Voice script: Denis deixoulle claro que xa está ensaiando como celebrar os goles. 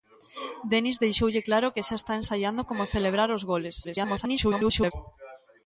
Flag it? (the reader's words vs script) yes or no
yes